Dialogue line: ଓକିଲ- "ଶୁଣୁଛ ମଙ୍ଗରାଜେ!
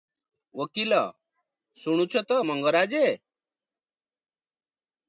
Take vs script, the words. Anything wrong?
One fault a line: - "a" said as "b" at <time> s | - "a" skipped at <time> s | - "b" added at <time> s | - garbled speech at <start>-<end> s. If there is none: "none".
- "ତ" added at 2.2 s